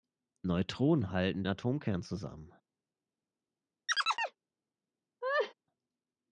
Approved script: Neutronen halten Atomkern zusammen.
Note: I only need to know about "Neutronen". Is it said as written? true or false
true